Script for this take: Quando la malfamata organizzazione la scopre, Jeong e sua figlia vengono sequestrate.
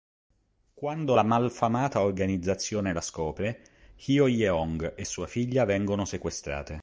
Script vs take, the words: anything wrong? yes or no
yes